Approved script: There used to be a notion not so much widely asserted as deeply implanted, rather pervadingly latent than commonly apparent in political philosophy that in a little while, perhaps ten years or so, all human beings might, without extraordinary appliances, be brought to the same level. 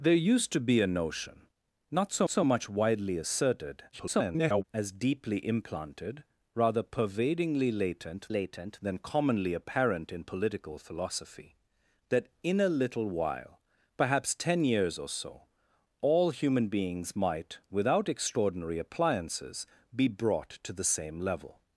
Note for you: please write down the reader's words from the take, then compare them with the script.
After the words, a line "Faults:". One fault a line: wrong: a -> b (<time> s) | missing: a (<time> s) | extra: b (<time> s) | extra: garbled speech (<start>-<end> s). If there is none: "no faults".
There used to be a notion not so so much widely asserted [garbled] as deeply implanted, rather pervadingly latent latent than commonly apparent in political philosophy that in a little while, perhaps ten years or so, all human beings might, without extraordinary appliances, be brought to the same level.
Faults:
extra: so (2.3 s)
extra: garbled speech (3.9-4.6 s)
extra: latent (8.3 s)